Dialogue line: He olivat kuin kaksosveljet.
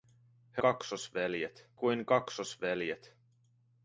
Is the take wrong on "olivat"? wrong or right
wrong